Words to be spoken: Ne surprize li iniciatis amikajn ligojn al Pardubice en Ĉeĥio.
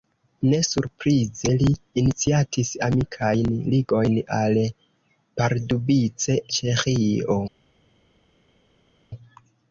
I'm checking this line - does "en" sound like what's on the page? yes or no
no